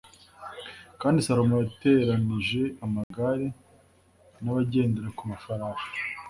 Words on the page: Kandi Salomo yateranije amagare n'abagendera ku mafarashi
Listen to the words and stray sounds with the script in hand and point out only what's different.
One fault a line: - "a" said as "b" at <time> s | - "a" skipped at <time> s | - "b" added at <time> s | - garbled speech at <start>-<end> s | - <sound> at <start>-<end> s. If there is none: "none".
- dropout at 3.0-3.1 s